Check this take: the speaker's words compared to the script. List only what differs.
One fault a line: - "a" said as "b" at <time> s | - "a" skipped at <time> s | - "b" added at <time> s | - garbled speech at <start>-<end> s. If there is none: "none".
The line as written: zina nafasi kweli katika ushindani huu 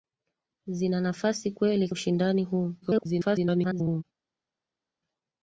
- "katika" skipped at 1.9 s
- garbled speech at 2.8-4.0 s